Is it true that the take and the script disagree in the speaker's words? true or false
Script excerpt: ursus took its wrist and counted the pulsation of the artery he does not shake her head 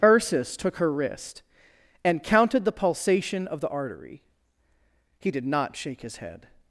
true